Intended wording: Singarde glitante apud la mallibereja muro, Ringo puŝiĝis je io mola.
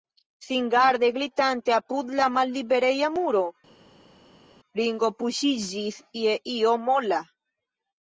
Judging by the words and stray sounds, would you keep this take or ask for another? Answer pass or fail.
pass